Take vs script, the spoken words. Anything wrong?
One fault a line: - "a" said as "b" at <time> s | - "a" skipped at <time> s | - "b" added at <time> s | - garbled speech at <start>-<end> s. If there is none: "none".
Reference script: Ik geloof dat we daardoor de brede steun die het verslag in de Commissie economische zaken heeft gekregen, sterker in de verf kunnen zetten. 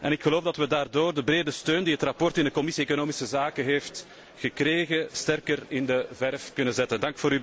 none